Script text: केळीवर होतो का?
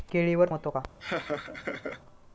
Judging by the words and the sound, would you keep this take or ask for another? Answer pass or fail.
fail